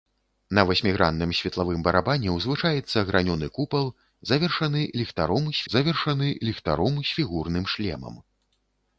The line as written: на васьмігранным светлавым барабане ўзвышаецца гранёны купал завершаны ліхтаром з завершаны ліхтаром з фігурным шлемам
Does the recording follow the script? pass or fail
pass